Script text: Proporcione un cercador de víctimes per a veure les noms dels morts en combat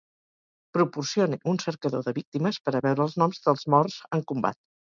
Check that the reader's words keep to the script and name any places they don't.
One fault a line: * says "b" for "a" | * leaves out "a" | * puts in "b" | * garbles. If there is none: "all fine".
* says "els" for "les"